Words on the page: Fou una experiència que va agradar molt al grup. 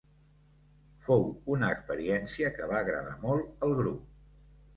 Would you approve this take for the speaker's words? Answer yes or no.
yes